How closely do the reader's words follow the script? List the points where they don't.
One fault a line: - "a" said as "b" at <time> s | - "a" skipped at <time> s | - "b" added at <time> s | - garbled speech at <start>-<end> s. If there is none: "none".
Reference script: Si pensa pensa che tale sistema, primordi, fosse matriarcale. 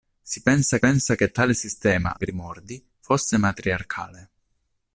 none